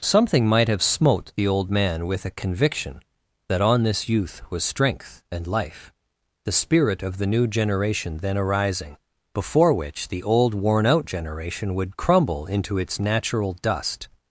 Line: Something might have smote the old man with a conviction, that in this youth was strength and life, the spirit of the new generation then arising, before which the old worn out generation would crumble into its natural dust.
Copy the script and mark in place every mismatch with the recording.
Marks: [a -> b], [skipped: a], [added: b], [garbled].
Something might have smote the old man with a conviction, that [in -> on] this youth was strength and life, the spirit of the new generation then arising, before which the old worn out generation would crumble into its natural dust.